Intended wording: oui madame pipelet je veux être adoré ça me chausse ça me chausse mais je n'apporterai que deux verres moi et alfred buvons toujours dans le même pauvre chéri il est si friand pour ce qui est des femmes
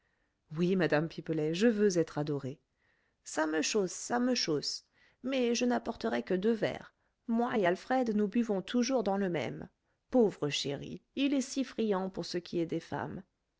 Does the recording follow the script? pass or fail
fail